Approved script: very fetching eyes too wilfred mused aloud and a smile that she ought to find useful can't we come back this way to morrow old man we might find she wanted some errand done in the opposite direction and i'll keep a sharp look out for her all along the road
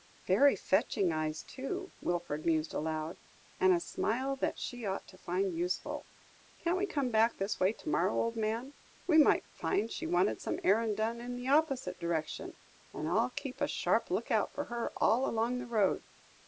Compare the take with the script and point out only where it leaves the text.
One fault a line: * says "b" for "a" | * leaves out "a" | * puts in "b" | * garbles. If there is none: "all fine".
all fine